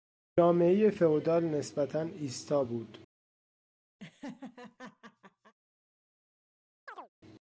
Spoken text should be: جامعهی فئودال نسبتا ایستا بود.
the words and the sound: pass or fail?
fail